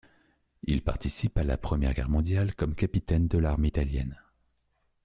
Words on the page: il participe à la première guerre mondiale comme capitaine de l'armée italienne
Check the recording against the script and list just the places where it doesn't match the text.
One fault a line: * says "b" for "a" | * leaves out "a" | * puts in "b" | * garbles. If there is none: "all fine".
all fine